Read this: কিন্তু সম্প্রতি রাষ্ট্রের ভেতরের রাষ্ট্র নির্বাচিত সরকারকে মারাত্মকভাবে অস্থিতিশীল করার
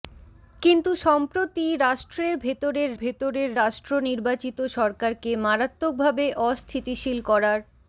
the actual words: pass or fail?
fail